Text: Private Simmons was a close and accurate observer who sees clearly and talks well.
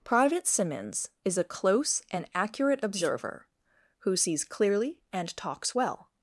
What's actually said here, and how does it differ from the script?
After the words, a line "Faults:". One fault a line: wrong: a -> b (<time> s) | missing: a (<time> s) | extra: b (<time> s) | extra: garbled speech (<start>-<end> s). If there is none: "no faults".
Private Simmons is a close and accurate observer who sees clearly and talks well.
Faults:
wrong: was -> is (1.2 s)